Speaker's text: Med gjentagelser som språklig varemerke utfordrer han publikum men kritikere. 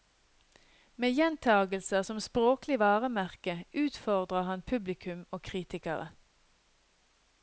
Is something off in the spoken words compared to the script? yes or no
yes